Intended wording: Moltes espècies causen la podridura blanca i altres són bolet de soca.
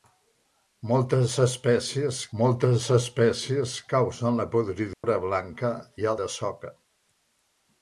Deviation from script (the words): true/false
true